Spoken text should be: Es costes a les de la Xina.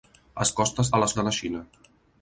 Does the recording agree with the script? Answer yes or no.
yes